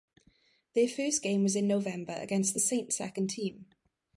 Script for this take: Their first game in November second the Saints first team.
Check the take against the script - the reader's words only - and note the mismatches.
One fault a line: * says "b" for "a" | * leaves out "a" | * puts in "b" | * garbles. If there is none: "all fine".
* puts in "was"
* says "against" for "second"
* says "second" for "first"